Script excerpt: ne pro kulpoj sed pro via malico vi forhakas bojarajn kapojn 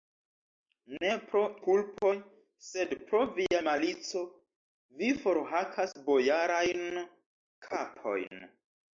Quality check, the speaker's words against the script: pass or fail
pass